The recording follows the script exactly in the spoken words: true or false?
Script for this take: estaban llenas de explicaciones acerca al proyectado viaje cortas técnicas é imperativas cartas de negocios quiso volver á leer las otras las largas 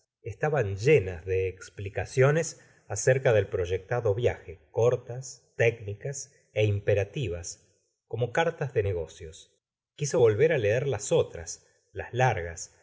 false